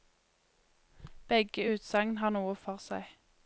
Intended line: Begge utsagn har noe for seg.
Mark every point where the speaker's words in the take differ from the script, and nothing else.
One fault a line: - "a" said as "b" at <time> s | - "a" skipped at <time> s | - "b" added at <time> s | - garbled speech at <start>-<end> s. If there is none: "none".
none